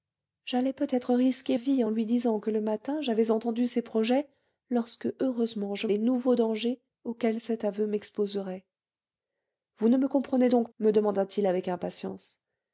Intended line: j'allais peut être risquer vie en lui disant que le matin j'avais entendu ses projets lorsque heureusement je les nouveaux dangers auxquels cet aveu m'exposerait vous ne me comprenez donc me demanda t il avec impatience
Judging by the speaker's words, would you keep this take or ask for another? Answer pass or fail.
pass